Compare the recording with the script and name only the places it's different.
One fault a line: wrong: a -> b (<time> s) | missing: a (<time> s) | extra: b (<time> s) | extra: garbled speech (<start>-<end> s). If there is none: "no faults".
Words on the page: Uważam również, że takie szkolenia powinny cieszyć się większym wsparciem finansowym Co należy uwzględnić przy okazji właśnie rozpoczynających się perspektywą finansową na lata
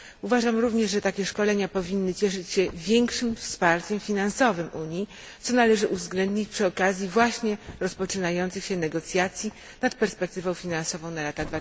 extra: Unii (4.7 s)
extra: negocjacji nad (8.8 s)